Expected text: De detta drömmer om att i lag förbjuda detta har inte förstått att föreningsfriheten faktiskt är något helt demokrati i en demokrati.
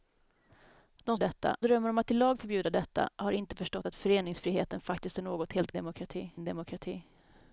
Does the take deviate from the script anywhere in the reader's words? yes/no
no